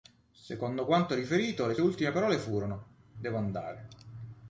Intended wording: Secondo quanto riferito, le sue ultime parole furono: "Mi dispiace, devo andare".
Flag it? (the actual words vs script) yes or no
yes